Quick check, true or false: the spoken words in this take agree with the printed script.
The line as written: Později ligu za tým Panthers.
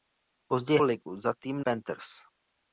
true